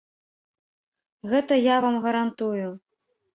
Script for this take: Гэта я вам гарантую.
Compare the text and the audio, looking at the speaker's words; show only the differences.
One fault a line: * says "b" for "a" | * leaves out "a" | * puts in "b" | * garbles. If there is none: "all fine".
all fine